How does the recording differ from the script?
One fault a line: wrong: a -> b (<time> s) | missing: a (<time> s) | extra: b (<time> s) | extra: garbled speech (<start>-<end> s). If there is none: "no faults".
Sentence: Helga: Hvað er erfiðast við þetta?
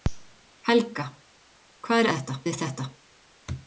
wrong: erfiðast -> þetta (2.1 s)